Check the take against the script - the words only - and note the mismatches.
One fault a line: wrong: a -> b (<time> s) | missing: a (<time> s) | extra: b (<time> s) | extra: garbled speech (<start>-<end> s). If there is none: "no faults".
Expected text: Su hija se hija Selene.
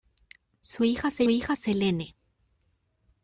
no faults